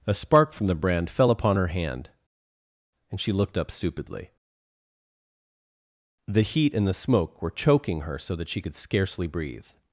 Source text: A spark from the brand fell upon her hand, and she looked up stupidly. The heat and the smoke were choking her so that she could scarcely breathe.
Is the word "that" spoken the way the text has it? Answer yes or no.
yes